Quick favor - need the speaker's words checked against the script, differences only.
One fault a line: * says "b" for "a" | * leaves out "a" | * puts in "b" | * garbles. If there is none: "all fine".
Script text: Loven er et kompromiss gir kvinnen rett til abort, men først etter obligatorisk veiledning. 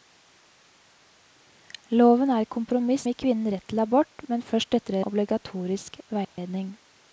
all fine